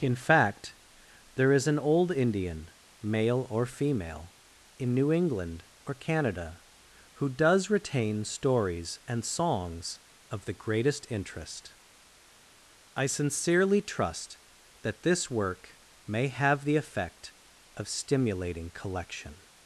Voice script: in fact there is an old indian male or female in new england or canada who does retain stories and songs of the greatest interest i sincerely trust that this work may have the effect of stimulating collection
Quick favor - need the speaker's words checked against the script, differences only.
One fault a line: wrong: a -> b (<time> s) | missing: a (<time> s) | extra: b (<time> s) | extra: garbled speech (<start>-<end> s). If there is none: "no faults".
no faults